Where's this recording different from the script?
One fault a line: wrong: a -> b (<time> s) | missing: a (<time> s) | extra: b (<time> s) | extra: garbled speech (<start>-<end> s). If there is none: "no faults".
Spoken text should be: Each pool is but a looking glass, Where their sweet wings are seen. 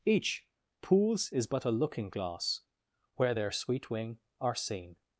wrong: pool -> pools (0.8 s)
wrong: wings -> wing (3.9 s)